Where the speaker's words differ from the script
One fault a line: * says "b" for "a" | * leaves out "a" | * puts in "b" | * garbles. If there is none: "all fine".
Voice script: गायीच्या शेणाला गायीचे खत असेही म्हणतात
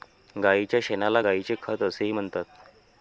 all fine